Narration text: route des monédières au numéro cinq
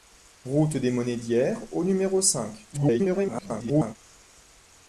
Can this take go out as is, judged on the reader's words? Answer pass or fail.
fail